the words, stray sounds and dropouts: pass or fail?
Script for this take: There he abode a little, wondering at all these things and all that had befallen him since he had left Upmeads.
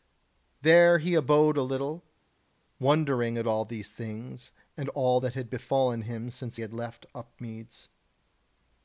fail